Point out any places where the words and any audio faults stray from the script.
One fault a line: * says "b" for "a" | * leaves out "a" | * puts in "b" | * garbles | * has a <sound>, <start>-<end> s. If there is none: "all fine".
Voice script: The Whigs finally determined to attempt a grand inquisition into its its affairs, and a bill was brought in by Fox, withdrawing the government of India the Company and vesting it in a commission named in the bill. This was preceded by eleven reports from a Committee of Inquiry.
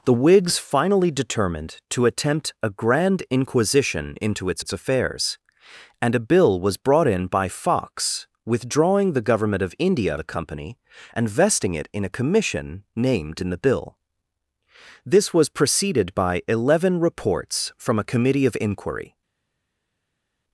all fine